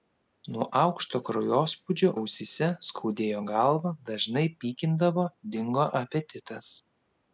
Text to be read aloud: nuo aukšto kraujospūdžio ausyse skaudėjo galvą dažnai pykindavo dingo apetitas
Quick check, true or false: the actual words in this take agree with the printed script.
true